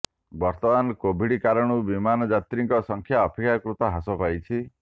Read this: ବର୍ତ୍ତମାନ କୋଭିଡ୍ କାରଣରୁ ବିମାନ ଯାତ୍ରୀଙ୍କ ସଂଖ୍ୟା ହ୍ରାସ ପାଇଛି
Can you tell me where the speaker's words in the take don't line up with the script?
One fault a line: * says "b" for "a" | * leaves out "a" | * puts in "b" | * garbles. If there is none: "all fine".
* puts in "ଅପେକ୍ଷାକୃତ"